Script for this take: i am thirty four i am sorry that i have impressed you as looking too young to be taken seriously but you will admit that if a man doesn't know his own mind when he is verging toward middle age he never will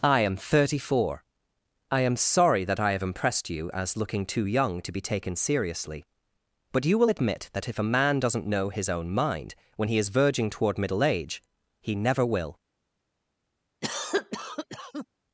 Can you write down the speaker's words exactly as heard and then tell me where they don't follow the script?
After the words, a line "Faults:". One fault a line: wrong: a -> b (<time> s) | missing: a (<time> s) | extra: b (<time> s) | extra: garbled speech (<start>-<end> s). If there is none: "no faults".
i am thirty four i am sorry that i have impressed you as looking too young to be taken seriously but you will admit that if a man doesn't know his own mind when he is verging toward middle age he never will
Faults:
no faults